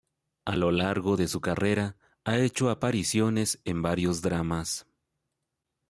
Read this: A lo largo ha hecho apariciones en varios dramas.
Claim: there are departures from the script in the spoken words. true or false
true